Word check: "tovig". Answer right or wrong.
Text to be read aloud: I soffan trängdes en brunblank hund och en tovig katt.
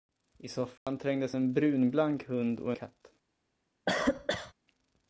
wrong